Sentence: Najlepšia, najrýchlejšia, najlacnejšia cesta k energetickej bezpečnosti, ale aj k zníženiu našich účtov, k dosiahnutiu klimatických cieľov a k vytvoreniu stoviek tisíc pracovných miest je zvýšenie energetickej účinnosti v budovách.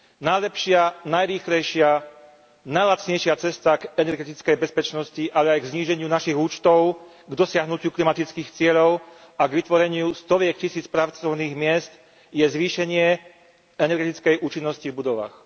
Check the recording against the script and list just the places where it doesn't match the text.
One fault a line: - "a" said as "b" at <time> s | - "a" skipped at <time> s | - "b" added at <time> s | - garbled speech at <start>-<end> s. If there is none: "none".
none